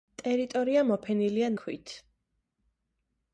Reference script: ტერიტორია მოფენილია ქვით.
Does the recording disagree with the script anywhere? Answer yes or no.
no